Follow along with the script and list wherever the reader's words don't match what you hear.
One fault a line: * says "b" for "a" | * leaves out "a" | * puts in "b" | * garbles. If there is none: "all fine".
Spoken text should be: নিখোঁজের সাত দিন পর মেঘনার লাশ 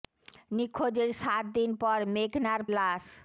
all fine